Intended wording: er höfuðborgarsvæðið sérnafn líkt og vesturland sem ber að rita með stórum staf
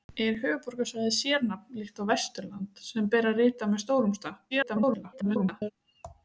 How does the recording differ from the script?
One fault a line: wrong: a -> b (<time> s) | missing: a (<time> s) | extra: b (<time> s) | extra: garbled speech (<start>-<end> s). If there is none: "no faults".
extra: garbled speech (4.5-5.7 s)